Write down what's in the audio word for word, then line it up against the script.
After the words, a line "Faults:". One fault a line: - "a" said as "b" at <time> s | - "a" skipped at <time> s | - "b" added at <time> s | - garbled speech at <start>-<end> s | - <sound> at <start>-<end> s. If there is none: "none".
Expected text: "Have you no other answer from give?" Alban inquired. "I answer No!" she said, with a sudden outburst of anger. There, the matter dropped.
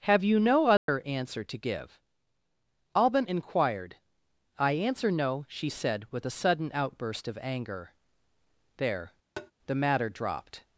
"Have you no other answer to give?" Alban inquired. "I answer No!" she said, with a sudden outburst of anger. There, the matter dropped.
Faults:
- dropout at 0.8-0.9 s
- "from" said as "to" at 1.4 s
- tap at 9.4-9.5 s